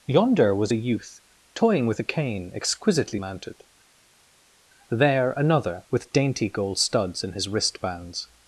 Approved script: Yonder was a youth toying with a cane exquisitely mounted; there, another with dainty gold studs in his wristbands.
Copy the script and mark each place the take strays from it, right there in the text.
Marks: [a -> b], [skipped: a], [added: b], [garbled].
Yonder was a youth toying with a cane exquisitely mounted; there, another with dainty gold studs in his wristbands.